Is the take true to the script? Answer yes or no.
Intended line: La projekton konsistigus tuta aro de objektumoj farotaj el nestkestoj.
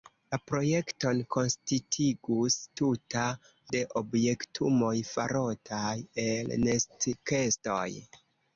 no